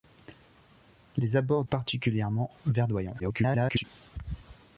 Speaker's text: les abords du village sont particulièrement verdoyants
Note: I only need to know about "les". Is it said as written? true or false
true